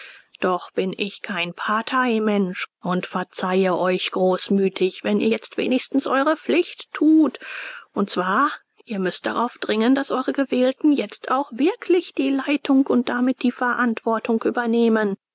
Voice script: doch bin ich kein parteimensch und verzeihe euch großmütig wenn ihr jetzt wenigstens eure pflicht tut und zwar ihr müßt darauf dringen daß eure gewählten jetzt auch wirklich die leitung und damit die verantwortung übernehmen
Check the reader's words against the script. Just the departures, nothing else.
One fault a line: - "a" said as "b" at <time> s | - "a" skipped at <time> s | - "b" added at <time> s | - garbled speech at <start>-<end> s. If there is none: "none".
none